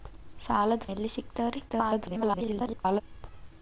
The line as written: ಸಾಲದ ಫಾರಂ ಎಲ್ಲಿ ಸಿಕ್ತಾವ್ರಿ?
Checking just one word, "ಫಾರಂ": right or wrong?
wrong